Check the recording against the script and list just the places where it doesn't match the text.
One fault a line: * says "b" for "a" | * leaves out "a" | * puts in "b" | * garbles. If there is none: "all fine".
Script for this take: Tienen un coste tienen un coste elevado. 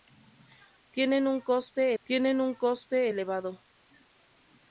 all fine